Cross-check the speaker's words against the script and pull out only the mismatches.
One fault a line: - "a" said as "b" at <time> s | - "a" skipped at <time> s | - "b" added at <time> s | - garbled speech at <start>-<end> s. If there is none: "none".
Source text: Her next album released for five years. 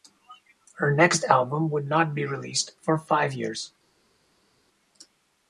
- "would not be" added at 1.7 s